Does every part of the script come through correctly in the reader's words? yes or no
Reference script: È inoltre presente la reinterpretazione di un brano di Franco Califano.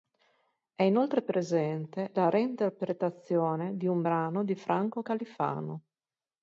yes